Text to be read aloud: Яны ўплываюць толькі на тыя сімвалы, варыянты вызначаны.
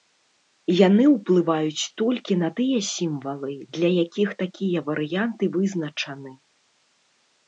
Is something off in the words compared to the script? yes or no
yes